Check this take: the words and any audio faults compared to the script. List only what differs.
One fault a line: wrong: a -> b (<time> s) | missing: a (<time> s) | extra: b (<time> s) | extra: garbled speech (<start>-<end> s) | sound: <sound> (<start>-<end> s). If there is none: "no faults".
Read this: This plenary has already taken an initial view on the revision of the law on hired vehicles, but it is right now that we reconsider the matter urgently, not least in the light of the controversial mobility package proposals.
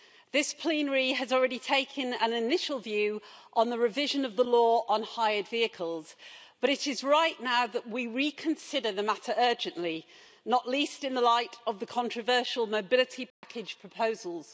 sound: dropout (13.3-13.4 s)